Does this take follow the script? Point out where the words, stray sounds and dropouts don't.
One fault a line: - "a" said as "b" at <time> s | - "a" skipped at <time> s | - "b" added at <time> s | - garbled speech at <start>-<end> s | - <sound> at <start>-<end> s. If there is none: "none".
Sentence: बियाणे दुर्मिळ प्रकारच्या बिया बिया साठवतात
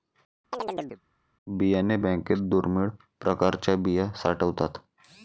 - chirp at 0.5-1.0 s
- "बँकेत" added at 2.0 s
- "बिया" skipped at 4.1 s